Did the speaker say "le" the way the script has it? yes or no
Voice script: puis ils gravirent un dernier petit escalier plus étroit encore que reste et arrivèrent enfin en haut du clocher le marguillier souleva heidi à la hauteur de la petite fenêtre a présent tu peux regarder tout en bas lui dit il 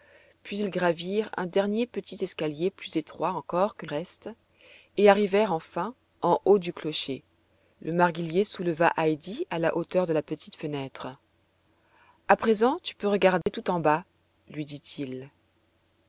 yes